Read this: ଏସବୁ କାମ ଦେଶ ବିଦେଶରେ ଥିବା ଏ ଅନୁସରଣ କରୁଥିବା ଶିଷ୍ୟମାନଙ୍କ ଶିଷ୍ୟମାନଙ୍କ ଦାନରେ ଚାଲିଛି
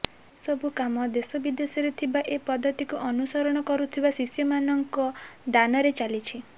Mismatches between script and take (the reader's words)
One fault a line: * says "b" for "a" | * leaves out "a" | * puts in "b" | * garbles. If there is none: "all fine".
* puts in "ପଦ୍ଧତିକୁ"
* leaves out "ଶିଷ୍ୟମାନଙ୍କ"